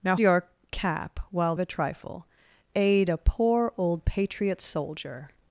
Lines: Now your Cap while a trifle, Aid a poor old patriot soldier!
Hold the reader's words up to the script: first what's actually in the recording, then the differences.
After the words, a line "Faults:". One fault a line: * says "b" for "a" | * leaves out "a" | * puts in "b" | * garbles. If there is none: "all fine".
Now your Cap while a trifle, Aid a poor old patriot soldier!
Faults:
all fine